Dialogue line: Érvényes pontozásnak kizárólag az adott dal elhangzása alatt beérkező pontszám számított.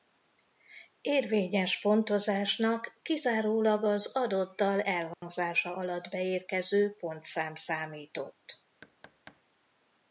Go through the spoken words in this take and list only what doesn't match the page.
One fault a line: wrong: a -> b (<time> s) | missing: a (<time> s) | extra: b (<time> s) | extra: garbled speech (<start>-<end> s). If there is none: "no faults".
no faults